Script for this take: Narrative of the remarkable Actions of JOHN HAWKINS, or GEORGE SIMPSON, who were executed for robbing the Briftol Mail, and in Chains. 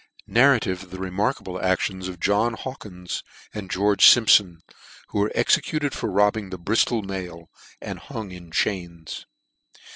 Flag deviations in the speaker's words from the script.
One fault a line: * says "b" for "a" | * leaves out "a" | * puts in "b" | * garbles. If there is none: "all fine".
* says "and" for "or"
* puts in "hung"